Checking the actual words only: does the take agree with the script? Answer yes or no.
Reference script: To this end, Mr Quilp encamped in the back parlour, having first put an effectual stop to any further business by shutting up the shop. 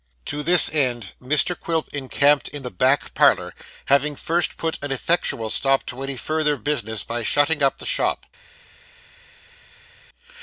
yes